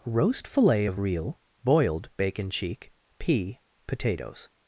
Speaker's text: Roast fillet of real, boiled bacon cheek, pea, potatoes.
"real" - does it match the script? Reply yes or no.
yes